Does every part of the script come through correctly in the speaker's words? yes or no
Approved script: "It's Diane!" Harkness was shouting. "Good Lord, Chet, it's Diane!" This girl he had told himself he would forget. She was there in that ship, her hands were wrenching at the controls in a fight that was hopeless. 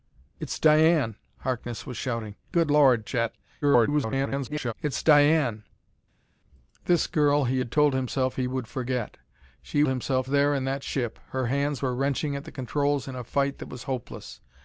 no